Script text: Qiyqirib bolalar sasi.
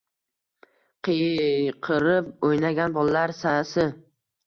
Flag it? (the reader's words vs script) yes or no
yes